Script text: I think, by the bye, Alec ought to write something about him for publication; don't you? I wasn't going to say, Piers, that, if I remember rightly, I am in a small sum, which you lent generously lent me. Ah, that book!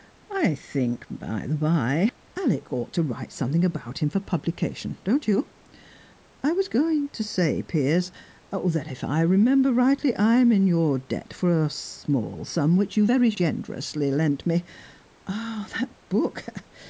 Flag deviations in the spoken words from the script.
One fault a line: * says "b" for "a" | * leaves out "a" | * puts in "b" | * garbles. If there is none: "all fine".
* says "was" for "wasn't"
* puts in "your debt for"
* says "very" for "lent"